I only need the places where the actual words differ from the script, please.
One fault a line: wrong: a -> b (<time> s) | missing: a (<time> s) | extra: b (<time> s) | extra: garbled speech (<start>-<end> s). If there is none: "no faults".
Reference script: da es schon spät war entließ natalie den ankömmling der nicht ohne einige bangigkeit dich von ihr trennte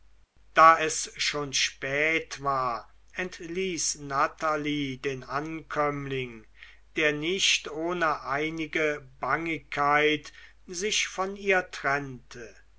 wrong: dich -> sich (10.7 s)